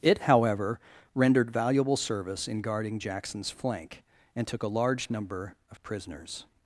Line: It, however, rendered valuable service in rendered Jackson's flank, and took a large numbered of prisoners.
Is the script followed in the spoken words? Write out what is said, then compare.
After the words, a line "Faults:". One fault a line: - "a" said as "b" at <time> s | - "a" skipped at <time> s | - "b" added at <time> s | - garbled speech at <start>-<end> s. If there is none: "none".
It, however, rendered valuable service in guarding Jackson's flank, and took a large number of prisoners.
Faults:
- "rendered" said as "guarding" at 2.6 s
- "numbered" said as "number" at 5.1 s